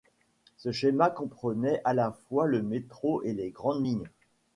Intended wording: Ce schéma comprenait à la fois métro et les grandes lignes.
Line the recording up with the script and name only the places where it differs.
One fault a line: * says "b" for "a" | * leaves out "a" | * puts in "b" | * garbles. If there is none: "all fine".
* puts in "le"